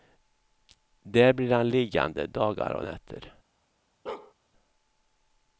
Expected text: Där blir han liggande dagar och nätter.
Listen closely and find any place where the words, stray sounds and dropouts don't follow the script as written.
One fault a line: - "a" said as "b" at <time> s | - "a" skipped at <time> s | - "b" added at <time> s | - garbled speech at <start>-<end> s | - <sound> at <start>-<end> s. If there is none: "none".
- bark at 4.1-4.3 s